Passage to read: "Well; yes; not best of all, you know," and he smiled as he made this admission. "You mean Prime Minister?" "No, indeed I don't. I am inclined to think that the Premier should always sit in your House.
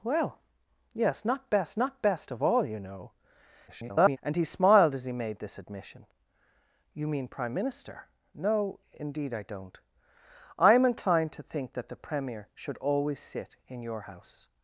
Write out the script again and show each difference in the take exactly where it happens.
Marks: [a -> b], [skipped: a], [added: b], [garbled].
"Well; yes; not best [added: not best] of all, you know," [garbled] and he smiled as he made this admission. "You mean Prime Minister?" "No, indeed I don't. I am inclined to think that the Premier should always sit in your House.